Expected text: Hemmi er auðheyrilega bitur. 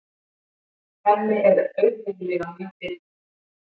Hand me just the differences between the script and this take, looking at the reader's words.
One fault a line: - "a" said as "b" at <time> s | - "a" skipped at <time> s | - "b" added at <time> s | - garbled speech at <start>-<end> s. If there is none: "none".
- "mjög" added at 2.6 s